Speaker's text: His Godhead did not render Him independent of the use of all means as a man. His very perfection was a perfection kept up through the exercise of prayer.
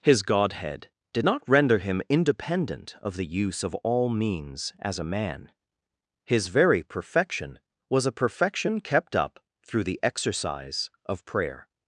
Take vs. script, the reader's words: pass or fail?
pass